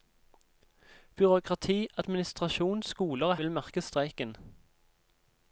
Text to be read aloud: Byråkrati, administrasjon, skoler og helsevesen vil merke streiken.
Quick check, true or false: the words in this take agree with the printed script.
false